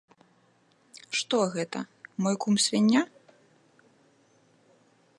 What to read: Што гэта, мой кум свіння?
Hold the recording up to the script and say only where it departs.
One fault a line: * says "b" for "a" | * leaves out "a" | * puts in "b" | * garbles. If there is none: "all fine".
all fine